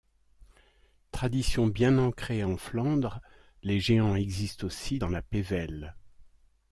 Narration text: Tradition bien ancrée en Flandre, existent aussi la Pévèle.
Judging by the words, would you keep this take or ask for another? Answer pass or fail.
fail